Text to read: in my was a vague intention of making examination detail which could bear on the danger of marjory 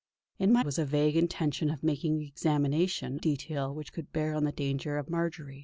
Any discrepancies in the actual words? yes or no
no